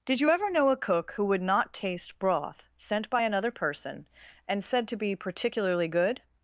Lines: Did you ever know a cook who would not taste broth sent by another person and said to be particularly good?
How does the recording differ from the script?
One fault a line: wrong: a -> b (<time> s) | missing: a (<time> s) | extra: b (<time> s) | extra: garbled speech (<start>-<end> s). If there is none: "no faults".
no faults